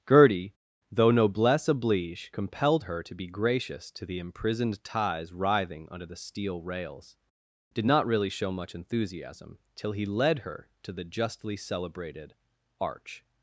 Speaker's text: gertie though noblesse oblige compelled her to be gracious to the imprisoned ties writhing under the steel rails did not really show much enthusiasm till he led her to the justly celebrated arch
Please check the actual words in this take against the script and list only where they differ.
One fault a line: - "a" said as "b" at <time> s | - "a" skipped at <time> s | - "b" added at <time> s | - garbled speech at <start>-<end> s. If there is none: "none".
none